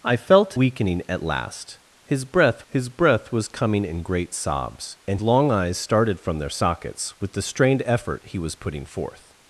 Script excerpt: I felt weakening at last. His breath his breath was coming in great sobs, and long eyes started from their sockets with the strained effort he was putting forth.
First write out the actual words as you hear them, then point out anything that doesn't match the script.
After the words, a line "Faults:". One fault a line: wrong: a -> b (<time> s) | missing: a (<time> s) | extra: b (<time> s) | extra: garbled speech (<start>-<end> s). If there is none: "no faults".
I felt weakening at last. His breath his breath was coming in great sobs, and long eyes started from their sockets with the strained effort he was putting forth.
Faults:
no faults